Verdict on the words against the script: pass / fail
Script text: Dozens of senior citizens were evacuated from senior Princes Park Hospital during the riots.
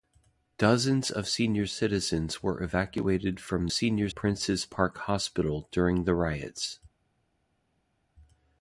pass